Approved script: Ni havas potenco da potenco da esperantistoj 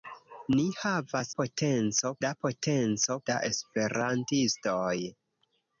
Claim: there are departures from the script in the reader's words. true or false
false